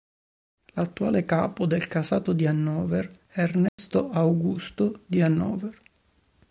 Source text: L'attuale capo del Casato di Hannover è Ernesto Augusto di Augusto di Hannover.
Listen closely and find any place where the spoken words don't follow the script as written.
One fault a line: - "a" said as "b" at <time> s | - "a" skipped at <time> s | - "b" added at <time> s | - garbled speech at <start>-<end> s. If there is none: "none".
- "Augusto di" skipped at 5.2 s